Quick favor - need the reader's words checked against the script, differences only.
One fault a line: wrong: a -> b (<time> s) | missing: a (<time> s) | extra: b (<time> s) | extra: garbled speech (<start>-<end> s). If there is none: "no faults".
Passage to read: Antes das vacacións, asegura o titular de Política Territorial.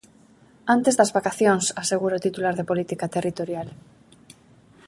no faults